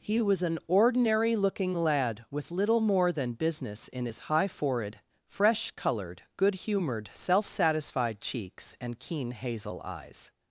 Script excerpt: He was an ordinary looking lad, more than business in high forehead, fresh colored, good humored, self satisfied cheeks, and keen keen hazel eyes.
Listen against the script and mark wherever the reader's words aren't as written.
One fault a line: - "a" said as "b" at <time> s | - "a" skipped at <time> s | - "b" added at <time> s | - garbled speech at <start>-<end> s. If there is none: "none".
- "with little" added at 2.3 s
- "his" added at 4.0 s
- "keen" skipped at 9.3 s